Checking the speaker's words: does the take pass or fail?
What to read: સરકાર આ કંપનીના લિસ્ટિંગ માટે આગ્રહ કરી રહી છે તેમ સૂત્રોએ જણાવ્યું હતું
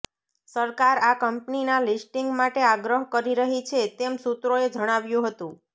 pass